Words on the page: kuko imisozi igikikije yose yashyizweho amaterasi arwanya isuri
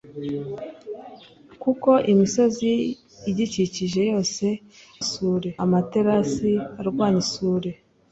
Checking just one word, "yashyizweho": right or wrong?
wrong